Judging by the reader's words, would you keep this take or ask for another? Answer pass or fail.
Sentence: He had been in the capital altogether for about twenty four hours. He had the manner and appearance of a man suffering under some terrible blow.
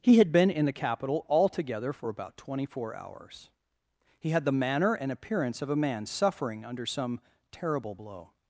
pass